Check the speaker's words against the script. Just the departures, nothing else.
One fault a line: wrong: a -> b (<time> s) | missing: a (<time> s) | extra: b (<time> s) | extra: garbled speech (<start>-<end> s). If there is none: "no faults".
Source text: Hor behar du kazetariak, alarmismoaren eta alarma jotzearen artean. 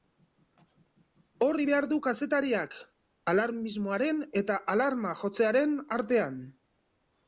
no faults